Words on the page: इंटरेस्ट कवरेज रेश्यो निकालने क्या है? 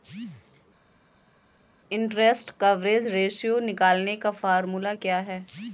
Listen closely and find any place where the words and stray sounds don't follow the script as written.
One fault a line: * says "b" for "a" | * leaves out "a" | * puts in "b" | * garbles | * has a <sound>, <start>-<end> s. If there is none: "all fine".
* puts in "का फार्मूला"